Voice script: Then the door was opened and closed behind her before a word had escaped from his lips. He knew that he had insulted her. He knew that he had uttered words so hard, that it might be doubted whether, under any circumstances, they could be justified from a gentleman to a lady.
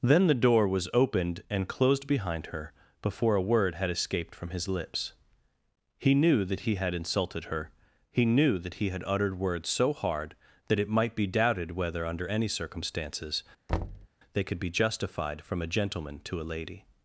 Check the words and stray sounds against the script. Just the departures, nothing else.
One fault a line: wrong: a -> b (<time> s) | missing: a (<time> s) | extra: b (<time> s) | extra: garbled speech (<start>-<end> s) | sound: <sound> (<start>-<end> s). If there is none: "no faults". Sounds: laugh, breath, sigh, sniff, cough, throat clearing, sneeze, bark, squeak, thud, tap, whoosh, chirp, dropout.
sound: thud (13.7-14.1 s)